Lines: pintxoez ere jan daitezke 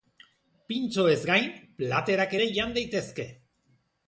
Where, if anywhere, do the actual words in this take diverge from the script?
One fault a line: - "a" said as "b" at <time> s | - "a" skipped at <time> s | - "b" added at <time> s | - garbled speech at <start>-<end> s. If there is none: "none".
- "gain platerak" added at 1.3 s